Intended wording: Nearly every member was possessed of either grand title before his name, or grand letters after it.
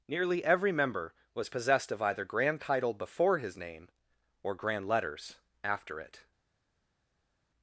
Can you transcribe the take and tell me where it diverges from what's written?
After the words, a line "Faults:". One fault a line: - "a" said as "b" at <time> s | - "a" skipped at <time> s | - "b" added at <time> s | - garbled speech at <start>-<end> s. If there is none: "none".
Nearly every member was possessed of either grand title before his name, or grand letters after it.
Faults:
none